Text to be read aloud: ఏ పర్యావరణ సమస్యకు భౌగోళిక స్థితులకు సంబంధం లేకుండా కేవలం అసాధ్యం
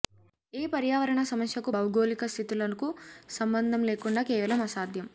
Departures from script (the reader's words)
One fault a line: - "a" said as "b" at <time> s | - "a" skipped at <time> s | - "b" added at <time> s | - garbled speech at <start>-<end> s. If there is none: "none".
none